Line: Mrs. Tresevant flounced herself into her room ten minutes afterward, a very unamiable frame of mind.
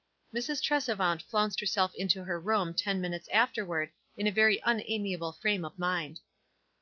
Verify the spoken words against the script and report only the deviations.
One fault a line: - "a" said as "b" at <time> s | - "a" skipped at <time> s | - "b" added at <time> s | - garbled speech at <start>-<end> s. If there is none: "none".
- "in" added at 4.1 s